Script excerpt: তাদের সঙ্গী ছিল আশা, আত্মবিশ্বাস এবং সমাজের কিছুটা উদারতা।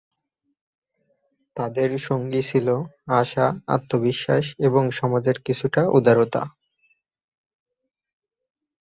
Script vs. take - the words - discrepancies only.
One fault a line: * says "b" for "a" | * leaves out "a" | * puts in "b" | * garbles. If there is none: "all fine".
all fine